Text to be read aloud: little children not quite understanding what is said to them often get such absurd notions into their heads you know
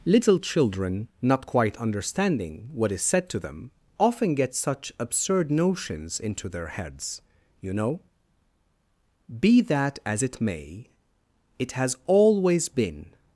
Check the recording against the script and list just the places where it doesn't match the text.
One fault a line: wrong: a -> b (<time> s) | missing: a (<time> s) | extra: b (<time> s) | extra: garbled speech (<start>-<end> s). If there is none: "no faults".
extra: be that as it may it has always been (9.4 s)